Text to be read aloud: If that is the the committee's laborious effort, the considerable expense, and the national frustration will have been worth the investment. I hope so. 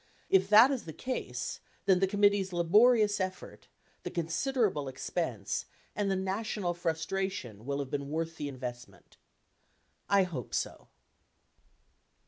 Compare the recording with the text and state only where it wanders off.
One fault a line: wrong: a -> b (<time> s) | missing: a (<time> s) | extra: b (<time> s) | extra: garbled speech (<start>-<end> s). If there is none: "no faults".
extra: case then (0.9 s)